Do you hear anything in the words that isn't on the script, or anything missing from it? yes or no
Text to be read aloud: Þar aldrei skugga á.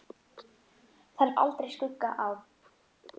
no